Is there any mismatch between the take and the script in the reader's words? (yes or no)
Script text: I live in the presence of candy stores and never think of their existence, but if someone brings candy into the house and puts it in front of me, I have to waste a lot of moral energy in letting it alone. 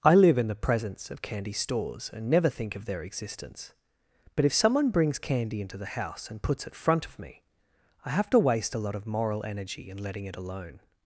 yes